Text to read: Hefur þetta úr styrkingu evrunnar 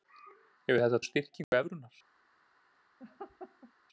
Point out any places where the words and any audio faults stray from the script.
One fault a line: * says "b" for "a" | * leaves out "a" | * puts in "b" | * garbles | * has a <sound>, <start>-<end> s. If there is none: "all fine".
* has a dropout, 1.4-1.5 s
* has a laugh, 3.0-3.7 s